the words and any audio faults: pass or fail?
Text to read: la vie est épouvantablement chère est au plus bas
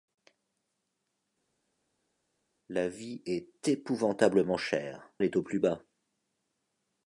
pass